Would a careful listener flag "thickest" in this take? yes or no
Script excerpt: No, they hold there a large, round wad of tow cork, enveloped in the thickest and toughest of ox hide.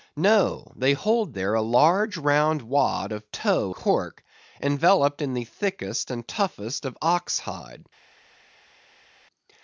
no